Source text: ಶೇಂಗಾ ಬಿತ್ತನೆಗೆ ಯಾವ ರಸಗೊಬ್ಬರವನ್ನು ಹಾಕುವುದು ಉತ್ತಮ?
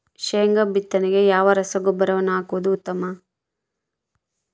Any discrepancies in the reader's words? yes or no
no